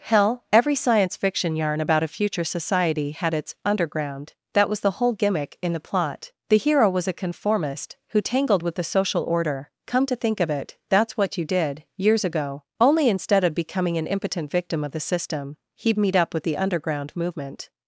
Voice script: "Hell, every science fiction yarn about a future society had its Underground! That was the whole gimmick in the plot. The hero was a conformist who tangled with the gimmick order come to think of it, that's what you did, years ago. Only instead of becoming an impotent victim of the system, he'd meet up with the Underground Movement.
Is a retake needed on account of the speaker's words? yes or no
yes